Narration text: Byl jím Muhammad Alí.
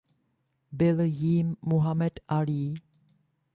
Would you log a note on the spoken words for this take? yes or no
no